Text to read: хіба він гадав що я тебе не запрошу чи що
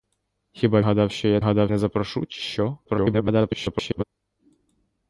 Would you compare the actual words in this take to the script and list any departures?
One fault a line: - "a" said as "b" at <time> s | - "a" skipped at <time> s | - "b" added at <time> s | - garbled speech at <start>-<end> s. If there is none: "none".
- "він" skipped at 0.8 s
- "тебе" said as "гадав" at 1.4 s
- garbled speech at 2.9-4.0 s